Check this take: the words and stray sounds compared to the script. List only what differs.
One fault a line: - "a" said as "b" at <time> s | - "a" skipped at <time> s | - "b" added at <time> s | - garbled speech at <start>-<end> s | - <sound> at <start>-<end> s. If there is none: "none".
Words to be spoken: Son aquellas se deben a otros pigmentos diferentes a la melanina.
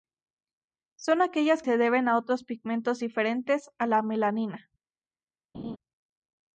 - laugh at 5.5-5.8 s